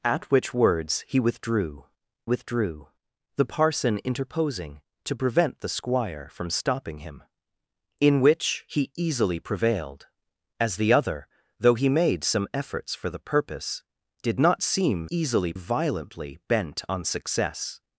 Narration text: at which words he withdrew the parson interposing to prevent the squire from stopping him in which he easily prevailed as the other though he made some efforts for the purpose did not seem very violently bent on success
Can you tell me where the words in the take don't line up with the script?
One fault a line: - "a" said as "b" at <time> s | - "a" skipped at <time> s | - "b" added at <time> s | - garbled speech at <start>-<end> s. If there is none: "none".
- "withdrew" added at 2.2 s
- "very" said as "easily" at 15.1 s